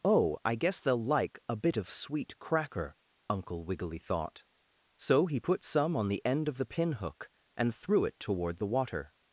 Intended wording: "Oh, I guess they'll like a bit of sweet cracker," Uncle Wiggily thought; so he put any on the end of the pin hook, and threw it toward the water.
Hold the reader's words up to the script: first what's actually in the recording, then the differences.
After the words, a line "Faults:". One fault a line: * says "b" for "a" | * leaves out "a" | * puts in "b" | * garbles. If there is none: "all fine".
"Oh, I guess they'll like a bit of sweet cracker," Uncle Wiggily thought; so he put some on the end of the pin hook, and threw it toward the water.
Faults:
* says "some" for "any"